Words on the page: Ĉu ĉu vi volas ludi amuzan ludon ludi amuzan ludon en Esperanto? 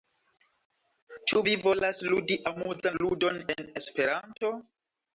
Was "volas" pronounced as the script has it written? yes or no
yes